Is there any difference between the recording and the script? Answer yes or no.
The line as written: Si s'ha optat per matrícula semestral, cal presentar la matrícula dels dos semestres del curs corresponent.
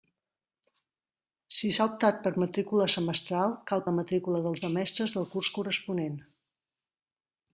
yes